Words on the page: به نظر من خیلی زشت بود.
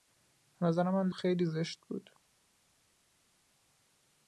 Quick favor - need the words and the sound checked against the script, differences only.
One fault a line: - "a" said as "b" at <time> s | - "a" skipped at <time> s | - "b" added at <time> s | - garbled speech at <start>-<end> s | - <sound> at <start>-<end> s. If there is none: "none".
none